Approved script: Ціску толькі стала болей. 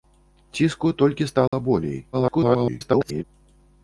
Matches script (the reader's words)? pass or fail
fail